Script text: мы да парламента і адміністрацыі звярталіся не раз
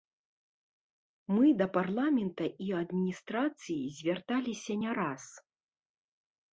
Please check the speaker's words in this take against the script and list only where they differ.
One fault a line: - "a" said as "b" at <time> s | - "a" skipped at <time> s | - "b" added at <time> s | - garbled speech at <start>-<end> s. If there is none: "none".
none